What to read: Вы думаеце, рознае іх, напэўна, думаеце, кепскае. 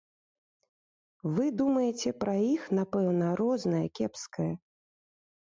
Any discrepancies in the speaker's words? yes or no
yes